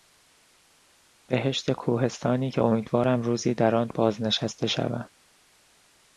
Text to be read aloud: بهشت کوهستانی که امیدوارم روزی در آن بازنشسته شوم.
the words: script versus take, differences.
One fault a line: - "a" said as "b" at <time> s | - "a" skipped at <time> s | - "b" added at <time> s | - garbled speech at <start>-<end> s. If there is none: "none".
none